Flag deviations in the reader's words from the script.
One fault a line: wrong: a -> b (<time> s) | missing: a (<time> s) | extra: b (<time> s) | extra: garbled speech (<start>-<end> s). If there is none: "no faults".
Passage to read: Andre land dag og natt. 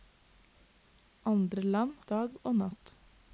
no faults